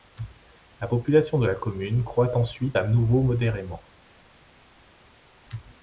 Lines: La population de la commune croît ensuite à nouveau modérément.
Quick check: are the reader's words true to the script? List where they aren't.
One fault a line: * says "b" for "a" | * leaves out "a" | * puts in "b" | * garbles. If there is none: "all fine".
all fine